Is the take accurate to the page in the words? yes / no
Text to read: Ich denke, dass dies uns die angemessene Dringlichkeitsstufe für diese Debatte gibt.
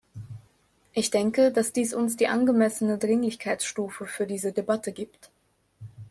yes